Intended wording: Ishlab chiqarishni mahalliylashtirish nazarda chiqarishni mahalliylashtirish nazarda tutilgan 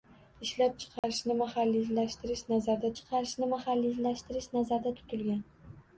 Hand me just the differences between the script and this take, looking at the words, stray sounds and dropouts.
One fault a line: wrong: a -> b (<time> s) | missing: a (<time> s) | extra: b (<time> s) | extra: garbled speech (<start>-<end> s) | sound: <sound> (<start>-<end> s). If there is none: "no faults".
sound: dropout (1.0-1.0 s)